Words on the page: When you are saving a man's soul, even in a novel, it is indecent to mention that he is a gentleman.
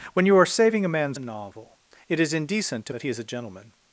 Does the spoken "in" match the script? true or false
false